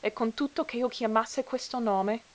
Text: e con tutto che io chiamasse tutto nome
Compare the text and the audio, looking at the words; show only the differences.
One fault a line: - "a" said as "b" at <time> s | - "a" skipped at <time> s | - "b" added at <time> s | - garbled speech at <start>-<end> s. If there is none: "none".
- "tutto" said as "questo" at 1.4 s